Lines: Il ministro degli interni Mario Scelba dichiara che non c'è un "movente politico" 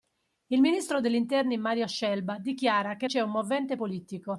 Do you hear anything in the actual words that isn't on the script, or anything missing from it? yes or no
yes